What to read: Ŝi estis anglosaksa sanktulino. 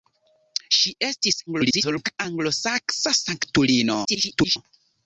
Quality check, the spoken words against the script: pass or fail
fail